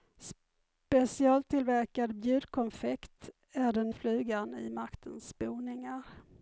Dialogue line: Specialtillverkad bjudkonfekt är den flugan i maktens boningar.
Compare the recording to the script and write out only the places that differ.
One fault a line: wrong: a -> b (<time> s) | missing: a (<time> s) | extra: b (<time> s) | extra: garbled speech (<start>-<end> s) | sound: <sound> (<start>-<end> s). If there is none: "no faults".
no faults